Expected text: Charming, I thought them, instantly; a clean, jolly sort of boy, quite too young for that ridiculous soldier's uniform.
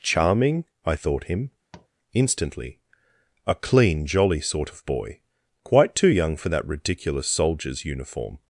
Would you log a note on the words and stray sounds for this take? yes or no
yes